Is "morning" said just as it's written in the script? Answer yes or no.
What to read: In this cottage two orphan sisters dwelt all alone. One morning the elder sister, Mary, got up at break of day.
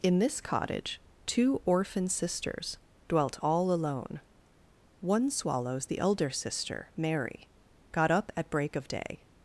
no